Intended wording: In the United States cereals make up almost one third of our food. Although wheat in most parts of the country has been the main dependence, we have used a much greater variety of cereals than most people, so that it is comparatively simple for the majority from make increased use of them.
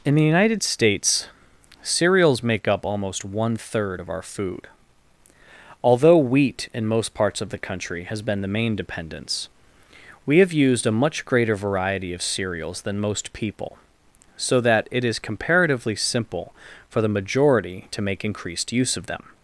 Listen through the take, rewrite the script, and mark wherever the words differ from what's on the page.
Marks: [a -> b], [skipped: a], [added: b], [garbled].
In the United States cereals make up almost one third of our food. Although wheat in most parts of the country has been the main dependence, we have used a much greater variety of cereals than most people, so that it is comparatively simple for the majority [from -> to] make increased use of them.